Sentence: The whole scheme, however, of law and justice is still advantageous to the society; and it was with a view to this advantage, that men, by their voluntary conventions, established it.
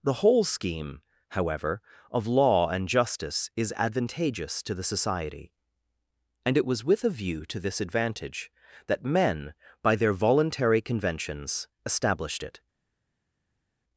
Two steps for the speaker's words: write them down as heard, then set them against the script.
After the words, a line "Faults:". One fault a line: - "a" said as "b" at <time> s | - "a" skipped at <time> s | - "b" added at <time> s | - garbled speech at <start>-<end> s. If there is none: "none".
The whole scheme, however, of law and justice is advantageous to the society; and it was with a view to this advantage, that men, by their voluntary conventions, established it.
Faults:
- "still" skipped at 3.7 s